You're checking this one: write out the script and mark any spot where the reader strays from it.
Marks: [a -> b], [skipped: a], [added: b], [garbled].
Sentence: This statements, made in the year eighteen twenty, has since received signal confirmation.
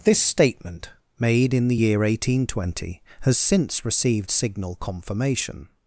This [statements, -> statement] made in the year eighteen twenty, has since received signal confirmation.